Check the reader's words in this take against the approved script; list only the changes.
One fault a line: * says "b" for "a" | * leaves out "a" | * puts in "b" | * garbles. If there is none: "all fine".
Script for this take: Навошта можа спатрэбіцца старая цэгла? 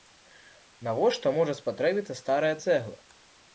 all fine